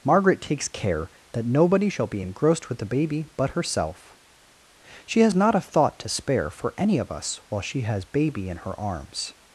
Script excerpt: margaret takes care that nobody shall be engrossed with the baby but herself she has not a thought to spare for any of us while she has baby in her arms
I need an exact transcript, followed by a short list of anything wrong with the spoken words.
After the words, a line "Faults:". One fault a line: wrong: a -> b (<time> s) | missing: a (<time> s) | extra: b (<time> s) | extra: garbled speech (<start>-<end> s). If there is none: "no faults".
margaret takes care that nobody shall be engrossed with the baby but herself she has not a thought to spare for any of us while she has baby in her arms
Faults:
no faults